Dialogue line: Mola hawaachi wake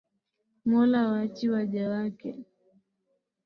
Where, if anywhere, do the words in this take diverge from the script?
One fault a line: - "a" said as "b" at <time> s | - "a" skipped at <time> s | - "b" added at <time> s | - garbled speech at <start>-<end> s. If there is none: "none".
- "waja" added at 1.5 s